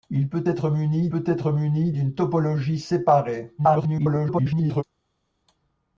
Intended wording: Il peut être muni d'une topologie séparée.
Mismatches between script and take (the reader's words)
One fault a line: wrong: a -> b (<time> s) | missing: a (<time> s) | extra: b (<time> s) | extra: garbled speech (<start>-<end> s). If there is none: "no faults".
extra: peut être muni (1.1 s)
extra: garbled speech (3.6-4.8 s)